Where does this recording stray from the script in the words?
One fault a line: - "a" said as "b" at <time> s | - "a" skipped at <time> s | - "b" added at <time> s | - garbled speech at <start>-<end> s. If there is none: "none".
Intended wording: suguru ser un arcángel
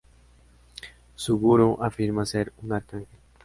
- "afirma" added at 1.8 s